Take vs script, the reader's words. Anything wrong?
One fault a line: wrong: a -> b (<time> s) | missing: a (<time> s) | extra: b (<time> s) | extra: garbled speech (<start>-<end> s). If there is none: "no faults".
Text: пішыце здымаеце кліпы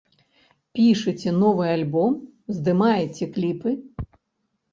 extra: новы альбом (1.4 s)